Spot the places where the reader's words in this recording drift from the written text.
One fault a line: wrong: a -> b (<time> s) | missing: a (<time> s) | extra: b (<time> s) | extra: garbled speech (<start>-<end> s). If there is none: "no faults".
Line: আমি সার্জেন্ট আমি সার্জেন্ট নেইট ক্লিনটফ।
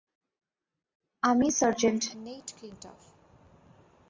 missing: আমি সার্জেন্ট (2.0 s)